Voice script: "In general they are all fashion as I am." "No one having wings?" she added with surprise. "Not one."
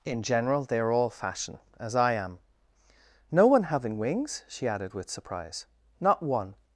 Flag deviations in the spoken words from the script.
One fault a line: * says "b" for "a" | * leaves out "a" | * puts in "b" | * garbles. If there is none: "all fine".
all fine